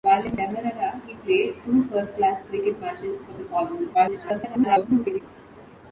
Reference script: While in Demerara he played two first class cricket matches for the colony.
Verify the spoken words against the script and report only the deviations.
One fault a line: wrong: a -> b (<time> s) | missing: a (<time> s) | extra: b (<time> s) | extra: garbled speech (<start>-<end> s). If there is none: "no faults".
extra: garbled speech (3.9-5.2 s)